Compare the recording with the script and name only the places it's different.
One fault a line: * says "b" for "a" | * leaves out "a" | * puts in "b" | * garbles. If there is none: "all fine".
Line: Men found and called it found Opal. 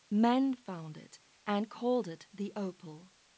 * puts in "it"
* says "the" for "found"